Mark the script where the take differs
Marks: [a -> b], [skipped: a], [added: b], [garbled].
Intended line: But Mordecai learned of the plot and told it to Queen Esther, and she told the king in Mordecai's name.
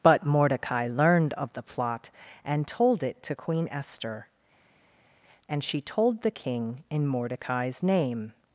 But Mordecai learned of the plot and told it to Queen Esther, and she told the king in Mordecai's name.